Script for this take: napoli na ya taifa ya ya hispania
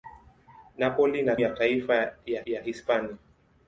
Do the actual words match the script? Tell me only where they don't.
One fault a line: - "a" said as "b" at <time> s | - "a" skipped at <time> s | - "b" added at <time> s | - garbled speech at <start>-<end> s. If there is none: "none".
none